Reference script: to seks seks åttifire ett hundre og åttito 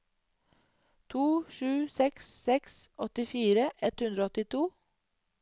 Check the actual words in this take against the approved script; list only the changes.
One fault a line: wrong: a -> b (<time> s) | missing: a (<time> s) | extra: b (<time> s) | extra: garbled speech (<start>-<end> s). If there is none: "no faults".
extra: sju (1.6 s)